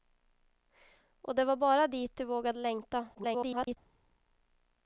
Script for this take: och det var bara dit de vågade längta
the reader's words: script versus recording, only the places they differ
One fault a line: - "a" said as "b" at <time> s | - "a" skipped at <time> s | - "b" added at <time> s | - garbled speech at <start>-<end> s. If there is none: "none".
- garbled speech at 3.1-3.8 s